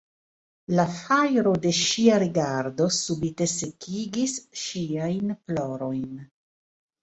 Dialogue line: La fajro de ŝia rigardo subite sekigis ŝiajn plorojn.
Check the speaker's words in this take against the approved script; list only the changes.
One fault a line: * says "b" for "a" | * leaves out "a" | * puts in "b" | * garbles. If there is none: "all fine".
all fine